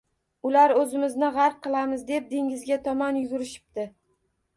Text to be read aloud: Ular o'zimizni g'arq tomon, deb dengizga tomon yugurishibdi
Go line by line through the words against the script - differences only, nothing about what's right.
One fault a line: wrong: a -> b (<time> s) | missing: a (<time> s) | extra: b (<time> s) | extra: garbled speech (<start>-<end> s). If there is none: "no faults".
wrong: tomon -> qilamiz (1.6 s)